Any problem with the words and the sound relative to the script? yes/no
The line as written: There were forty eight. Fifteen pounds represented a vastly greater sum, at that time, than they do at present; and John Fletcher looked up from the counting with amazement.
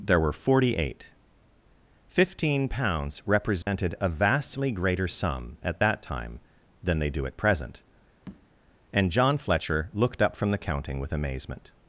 yes